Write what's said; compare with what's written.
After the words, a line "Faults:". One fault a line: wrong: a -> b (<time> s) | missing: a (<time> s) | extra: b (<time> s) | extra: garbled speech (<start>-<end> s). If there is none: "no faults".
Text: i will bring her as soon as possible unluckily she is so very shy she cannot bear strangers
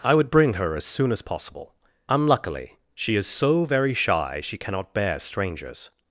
i would bring her as soon as possible unluckily she is so very shy she cannot bear strangers
Faults:
wrong: will -> would (0.1 s)